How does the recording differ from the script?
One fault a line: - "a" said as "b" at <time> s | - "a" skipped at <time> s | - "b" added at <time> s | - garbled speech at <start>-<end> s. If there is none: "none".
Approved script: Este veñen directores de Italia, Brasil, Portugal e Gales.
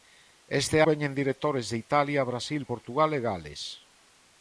none